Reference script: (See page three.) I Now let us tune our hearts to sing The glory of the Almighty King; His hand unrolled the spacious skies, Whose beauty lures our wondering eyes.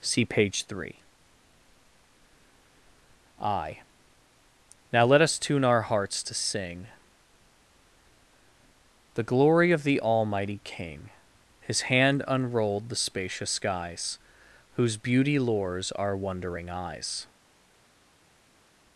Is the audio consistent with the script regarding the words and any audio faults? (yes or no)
yes